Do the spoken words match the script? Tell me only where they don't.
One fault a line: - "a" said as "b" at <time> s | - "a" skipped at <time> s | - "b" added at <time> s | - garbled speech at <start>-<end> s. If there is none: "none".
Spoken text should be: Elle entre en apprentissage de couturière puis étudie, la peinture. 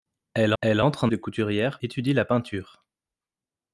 - "elle" added at 0.6 s
- "apprentissage" skipped at 1.1 s
- "puis" skipped at 1.8 s